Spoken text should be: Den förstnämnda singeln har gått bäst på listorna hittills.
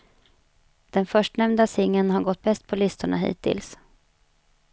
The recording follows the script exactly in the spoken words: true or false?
true